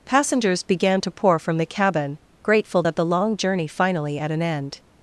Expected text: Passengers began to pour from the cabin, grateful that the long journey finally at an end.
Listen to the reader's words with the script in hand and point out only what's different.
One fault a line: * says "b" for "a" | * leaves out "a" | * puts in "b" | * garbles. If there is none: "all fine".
all fine